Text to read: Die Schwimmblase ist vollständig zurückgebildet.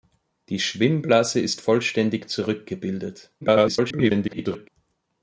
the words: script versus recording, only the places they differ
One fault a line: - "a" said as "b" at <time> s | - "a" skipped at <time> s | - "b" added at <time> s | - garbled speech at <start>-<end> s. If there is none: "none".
- garbled speech at 3.4-4.7 s